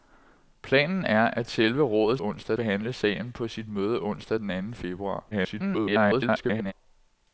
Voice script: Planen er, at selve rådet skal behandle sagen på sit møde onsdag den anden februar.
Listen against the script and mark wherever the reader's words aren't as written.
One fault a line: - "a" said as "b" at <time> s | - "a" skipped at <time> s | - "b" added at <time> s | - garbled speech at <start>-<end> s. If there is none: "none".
- "skal" said as "onsdag" at 2.2 s
- garbled speech at 5.3-6.7 s